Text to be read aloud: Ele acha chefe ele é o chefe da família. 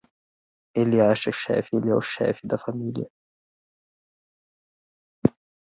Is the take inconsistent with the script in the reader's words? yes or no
no